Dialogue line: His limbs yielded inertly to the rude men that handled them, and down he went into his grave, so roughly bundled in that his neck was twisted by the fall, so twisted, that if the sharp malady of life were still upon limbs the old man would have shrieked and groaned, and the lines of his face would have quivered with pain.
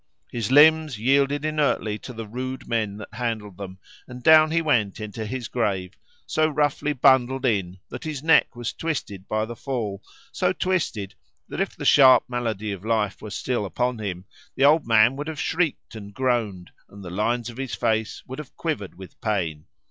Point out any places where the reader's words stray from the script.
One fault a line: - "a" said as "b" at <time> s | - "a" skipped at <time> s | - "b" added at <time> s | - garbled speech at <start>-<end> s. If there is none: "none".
- "limbs" said as "him" at 14.0 s